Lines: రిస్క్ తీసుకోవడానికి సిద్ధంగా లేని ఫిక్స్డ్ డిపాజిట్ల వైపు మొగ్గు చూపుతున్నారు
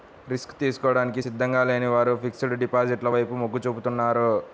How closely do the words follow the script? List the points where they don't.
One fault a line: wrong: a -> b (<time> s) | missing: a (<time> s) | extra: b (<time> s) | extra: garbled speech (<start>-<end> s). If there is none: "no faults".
extra: వారు (1.9 s)